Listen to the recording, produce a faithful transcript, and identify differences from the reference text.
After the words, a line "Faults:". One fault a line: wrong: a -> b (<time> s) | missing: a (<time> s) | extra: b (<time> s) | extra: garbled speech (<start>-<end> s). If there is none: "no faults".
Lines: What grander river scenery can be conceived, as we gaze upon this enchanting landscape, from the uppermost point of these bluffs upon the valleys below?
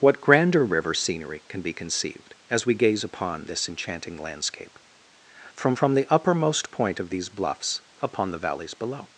What grander river scenery can be conceived, as we gaze upon this enchanting landscape, from from the uppermost point of these bluffs upon the valleys below?
Faults:
extra: from (5.7 s)